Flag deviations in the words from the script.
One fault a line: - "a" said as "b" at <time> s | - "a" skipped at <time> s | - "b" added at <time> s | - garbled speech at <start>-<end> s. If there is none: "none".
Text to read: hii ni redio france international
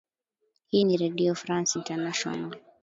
none